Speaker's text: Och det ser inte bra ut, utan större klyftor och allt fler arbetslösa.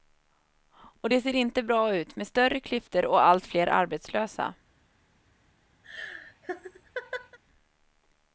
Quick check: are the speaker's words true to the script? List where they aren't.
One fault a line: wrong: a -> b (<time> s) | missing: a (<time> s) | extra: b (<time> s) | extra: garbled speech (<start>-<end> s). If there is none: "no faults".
wrong: utan -> med (2.2 s)